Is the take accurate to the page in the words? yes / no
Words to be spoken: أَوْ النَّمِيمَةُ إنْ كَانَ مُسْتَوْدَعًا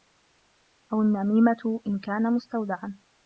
yes